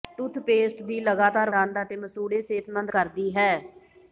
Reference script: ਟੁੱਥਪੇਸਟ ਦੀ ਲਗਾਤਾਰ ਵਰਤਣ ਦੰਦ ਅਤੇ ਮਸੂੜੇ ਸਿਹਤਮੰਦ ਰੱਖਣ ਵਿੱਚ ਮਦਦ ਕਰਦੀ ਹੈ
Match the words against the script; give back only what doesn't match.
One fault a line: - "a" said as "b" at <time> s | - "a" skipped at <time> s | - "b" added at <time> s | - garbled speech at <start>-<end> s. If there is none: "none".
- "ਵਰਤਣ" skipped at 1.5 s
- "ਰੱਖਣ ਵਿੱਚ ਮਦਦ" skipped at 2.9 s